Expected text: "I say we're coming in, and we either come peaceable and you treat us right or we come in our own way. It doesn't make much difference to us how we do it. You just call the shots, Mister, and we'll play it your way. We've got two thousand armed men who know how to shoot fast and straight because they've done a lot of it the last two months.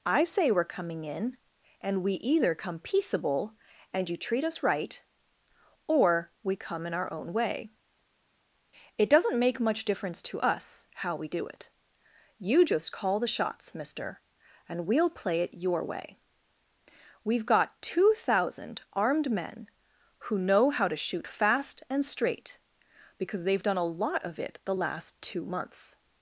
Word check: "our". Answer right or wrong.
right